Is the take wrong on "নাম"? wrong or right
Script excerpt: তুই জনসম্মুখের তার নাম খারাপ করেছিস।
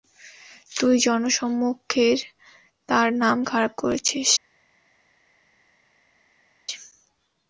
right